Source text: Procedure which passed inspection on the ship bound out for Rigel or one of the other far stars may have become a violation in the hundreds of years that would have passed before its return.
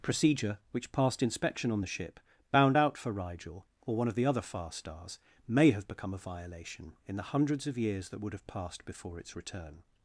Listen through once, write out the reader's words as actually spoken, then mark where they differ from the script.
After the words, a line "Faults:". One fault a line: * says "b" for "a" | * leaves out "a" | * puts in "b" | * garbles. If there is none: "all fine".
Procedure which passed inspection on the ship bound out for Rigel or one of the other far stars may have become a violation in the hundreds of years that would have passed before its return.
Faults:
all fine